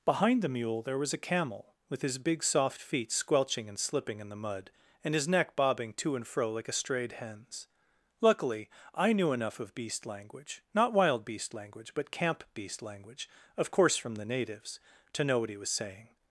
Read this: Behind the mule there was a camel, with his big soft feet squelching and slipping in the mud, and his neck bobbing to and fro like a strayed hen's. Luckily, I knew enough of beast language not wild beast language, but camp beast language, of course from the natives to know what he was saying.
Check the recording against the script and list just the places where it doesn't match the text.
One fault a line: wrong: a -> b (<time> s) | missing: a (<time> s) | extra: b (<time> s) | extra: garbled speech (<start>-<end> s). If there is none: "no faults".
no faults